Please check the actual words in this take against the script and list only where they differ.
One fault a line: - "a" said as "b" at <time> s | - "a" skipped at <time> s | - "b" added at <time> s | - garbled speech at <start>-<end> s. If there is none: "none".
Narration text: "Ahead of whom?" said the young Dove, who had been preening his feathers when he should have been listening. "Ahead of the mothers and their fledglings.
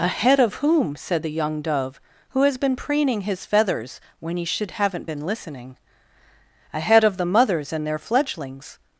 - "had" said as "has" at 2.4 s
- "have" said as "haven't" at 4.7 s